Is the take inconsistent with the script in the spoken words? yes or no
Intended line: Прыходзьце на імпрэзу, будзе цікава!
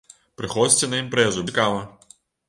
yes